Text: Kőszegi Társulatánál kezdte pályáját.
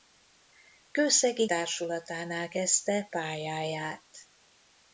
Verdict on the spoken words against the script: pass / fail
pass